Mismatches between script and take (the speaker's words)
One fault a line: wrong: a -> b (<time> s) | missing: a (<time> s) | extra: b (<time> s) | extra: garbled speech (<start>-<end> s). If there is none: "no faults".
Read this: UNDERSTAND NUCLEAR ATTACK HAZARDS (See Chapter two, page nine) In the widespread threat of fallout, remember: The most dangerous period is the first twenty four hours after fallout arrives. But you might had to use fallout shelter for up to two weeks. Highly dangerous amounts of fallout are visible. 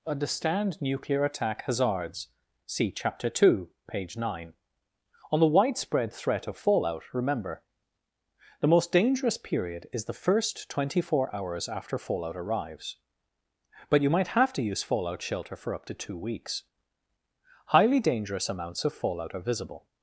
wrong: In -> On (5.3 s)
wrong: had -> have (14.3 s)